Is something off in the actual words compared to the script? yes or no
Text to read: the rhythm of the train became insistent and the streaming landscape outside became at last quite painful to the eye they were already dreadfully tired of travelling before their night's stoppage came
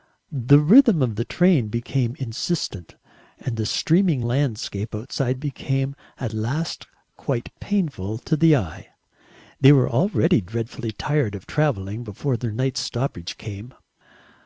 no